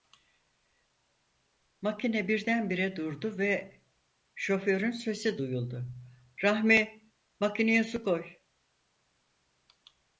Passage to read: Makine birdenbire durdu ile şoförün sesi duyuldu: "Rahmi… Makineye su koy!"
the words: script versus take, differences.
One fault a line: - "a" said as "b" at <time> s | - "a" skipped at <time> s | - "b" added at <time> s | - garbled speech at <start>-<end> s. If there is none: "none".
- "ile" said as "ve" at 3.4 s